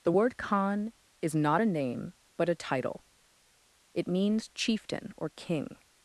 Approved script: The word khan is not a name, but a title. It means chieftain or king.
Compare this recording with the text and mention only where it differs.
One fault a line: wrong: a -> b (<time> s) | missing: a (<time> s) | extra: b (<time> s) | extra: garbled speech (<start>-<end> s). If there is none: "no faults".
no faults